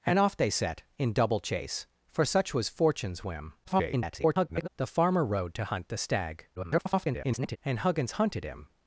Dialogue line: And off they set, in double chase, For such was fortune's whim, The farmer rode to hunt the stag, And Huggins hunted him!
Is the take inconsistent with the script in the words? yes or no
yes